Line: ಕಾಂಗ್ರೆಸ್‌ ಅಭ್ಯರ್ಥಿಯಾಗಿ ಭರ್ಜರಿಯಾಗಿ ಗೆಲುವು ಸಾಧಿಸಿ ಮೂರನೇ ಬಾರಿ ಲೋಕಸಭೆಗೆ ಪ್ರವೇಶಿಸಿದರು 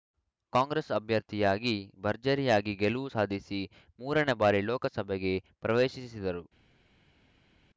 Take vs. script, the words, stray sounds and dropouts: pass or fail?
pass